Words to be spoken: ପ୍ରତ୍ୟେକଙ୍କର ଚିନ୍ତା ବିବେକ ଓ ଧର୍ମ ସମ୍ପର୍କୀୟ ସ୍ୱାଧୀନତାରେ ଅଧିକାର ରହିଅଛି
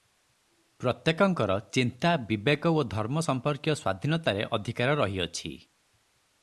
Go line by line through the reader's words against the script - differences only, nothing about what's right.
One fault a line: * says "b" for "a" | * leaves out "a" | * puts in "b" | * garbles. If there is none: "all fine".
all fine